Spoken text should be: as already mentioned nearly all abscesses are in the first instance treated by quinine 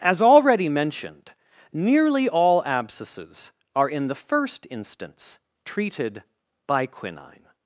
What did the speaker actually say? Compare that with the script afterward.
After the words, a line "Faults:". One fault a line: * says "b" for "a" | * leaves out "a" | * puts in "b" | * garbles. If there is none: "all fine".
as already mentioned nearly all abscesses are in the first instance treated by quinine
Faults:
all fine